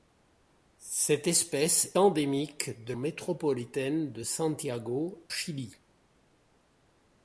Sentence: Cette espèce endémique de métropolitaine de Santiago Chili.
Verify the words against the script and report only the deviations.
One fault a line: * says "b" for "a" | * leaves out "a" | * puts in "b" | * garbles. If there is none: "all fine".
all fine